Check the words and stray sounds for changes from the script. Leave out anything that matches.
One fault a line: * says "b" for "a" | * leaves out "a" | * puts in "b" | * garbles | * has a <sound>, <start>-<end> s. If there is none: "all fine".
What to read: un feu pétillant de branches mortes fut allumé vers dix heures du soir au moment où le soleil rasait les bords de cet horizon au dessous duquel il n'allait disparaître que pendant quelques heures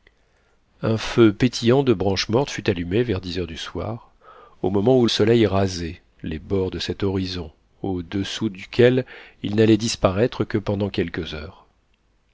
* leaves out "le"